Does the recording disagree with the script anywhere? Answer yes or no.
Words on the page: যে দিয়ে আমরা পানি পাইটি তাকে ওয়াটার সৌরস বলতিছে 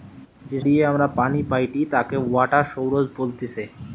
no